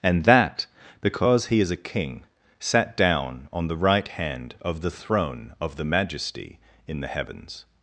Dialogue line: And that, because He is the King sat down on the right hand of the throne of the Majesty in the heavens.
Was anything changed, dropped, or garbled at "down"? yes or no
no